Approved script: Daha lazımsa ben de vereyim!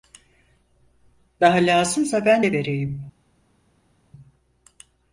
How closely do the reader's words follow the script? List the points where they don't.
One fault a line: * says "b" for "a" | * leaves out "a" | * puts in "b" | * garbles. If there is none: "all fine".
all fine